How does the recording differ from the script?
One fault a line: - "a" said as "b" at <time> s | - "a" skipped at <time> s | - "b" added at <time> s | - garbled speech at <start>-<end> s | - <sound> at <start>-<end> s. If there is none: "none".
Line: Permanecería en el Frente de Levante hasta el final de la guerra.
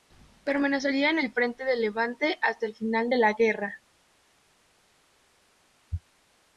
none